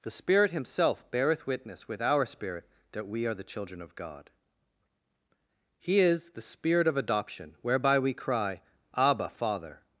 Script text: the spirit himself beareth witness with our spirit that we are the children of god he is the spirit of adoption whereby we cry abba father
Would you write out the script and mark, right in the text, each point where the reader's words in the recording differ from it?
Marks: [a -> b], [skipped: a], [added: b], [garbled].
the spirit himself beareth witness with our spirit that we are the children of god he is the spirit of adoption whereby we cry abba father